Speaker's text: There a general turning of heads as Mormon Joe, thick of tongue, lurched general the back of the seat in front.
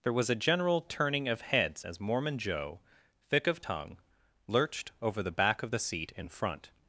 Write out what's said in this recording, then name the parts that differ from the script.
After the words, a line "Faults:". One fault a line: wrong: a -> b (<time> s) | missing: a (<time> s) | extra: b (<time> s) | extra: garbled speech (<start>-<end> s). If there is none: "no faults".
There was a general turning of heads as Mormon Joe, thick of tongue, lurched over the back of the seat in front.
Faults:
extra: was (0.1 s)
wrong: general -> over (5.0 s)